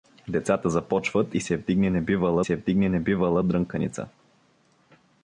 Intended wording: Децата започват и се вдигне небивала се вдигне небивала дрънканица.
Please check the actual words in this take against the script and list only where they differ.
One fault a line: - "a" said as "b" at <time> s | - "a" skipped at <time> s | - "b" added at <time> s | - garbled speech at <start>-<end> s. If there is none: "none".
none